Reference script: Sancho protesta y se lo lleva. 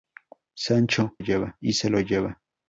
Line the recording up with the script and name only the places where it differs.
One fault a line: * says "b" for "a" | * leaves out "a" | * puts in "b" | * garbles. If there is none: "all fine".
* says "lleva" for "protesta"